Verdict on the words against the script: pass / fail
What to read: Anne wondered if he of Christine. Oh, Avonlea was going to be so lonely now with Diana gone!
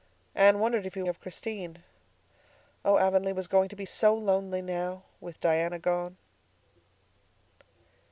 pass